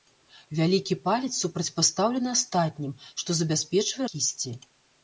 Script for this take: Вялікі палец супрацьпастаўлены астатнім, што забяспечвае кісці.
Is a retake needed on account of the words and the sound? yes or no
no